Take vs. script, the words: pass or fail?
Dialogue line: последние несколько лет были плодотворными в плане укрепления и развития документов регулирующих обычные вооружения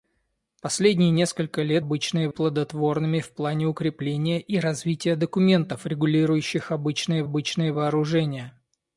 fail